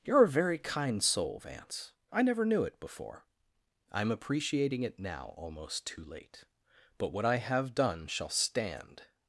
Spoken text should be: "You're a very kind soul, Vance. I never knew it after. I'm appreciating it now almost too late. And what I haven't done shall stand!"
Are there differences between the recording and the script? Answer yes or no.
yes